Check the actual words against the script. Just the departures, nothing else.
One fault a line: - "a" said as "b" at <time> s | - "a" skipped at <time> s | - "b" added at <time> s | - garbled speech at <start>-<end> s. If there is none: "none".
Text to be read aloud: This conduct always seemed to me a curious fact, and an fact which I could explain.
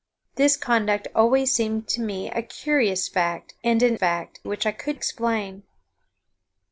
none